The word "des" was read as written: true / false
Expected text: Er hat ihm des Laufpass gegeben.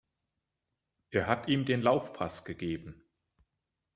false